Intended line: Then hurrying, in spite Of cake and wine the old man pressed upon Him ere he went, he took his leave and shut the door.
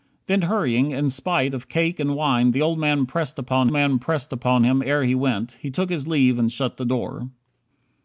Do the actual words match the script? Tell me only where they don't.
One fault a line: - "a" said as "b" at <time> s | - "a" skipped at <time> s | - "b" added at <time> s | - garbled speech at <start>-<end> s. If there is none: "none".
- "man pressed upon" added at 3.7 s